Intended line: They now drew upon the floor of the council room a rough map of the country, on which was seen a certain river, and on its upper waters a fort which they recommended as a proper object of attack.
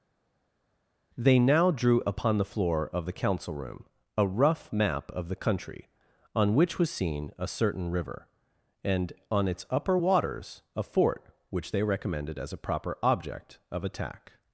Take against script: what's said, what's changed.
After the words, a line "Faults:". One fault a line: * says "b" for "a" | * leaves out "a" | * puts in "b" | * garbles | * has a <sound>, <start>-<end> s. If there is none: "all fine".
They now drew upon the floor of the council room a rough map of the country, on which was seen a certain river, and on its upper waters a fort which they recommended as a proper object of attack.
Faults:
all fine